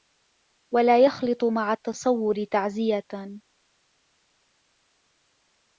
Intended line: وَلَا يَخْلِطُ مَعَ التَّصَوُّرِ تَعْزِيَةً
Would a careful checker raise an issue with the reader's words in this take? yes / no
no